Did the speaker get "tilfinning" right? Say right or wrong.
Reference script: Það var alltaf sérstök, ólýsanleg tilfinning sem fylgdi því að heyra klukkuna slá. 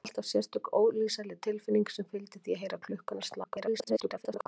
right